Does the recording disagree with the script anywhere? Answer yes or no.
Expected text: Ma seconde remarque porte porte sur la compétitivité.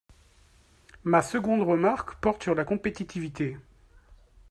yes